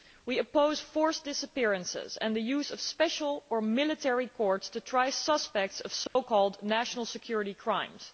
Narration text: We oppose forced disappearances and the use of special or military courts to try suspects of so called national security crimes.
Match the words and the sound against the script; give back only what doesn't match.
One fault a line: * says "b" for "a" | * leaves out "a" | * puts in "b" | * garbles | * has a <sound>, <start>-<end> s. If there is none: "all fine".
* has a dropout, 6.1-6.2 s